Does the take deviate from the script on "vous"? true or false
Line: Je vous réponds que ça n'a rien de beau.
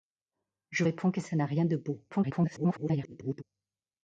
true